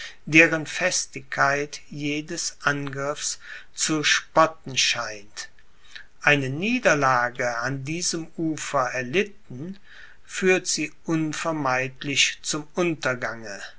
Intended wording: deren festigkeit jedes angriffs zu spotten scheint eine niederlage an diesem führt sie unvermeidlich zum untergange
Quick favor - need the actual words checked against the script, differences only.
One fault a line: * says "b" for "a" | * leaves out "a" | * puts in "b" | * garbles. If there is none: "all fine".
* puts in "ufer erlitten"